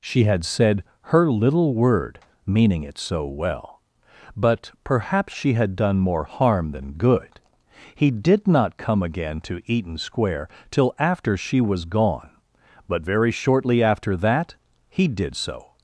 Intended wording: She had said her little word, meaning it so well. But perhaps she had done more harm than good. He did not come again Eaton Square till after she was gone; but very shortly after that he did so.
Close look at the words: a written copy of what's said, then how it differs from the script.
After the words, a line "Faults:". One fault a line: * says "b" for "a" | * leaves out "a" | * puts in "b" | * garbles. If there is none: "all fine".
She had said her little word, meaning it so well. But perhaps she had done more harm than good. He did not come again to Eaton Square till after she was gone; but very shortly after that he did so.
Faults:
* puts in "to"